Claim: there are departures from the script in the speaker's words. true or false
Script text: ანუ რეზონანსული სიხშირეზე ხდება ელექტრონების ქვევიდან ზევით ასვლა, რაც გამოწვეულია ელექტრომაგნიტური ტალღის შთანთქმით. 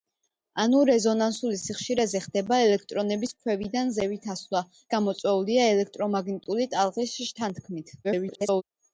true